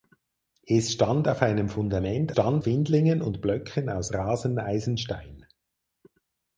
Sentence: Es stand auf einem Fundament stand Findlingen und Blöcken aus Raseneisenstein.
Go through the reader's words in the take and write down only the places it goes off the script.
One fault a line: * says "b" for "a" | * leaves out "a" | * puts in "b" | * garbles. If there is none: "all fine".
all fine